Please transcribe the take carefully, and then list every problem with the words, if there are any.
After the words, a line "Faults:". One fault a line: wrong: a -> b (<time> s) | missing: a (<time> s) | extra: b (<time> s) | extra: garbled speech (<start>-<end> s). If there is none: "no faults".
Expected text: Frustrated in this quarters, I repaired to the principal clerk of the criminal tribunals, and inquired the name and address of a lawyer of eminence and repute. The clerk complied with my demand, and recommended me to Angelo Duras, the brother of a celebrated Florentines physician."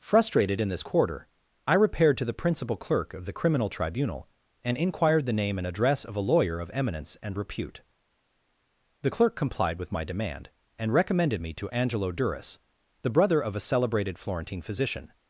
Frustrated in this quarter, I repaired to the principal clerk of the criminal tribunal, and inquired the name and address of a lawyer of eminence and repute. The clerk complied with my demand, and recommended me to Angelo Duras, the brother of a celebrated Florentine physician."
Faults:
wrong: quarters -> quarter (0.8 s)
wrong: tribunals -> tribunal (3.7 s)
wrong: Florentines -> Florentine (14.2 s)